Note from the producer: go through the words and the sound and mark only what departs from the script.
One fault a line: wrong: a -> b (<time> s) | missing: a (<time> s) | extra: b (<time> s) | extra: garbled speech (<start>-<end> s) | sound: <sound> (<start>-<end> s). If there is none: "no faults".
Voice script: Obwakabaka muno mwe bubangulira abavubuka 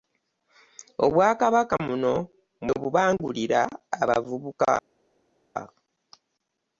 no faults